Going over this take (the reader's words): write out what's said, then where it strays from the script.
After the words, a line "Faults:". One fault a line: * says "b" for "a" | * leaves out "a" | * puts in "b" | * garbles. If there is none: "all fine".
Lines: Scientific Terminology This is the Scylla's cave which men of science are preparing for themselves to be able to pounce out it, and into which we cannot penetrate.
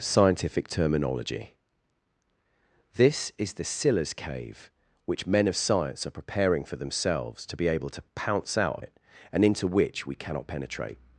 Scientific Terminology This is the Scylla's cave which men of science are preparing for themselves to be able to pounce out it, and into which we cannot penetrate.
Faults:
all fine